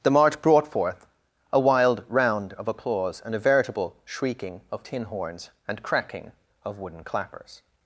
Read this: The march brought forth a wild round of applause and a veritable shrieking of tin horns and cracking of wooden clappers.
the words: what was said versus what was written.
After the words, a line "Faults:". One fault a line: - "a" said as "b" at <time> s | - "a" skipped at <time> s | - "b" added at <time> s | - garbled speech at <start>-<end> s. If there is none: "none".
The march brought forth a wild round of applause and a veritable shrieking of tin horns and cracking of wooden clappers.
Faults:
none